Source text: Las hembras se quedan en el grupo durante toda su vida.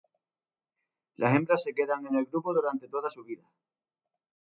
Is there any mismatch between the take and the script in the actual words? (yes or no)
no